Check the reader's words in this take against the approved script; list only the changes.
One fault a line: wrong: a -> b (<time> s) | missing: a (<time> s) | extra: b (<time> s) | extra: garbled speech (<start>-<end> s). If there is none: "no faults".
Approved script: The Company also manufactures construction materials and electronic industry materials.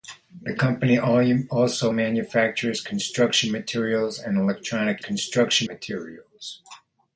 wrong: industry -> construction (5.0 s)